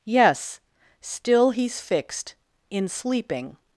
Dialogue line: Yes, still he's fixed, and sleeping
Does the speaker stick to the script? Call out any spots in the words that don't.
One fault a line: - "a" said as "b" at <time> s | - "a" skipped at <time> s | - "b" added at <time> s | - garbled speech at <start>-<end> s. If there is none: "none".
- "and" said as "in" at 2.7 s